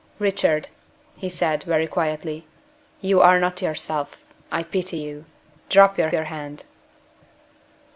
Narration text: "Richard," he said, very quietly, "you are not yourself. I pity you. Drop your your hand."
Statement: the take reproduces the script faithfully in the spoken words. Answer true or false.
true